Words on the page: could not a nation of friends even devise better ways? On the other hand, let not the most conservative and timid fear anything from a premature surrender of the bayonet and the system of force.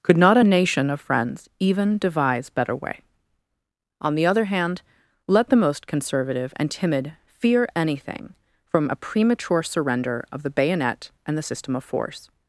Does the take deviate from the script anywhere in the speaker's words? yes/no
yes